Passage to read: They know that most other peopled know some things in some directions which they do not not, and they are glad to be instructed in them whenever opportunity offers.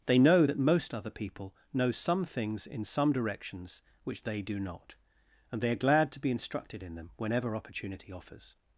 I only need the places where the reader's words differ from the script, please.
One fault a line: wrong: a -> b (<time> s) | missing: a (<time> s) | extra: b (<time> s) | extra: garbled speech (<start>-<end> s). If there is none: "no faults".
wrong: peopled -> people (1.1 s)
missing: not (4.9 s)